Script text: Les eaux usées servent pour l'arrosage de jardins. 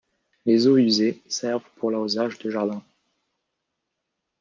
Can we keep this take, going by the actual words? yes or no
yes